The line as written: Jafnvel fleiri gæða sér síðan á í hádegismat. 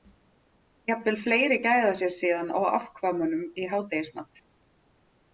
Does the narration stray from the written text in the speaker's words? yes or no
yes